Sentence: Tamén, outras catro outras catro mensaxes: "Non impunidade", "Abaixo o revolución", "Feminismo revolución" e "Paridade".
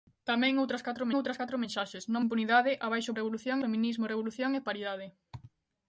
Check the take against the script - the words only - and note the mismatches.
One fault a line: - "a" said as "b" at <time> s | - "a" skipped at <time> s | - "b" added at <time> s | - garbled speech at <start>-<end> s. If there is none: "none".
none